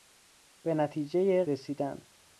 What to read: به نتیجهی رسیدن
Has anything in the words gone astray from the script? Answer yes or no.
no